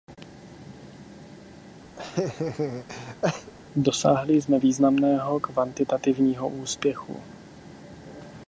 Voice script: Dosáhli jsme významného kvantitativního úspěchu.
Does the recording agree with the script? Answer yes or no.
yes